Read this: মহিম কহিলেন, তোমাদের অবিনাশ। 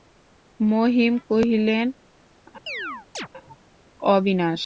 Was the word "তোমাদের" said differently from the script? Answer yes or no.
yes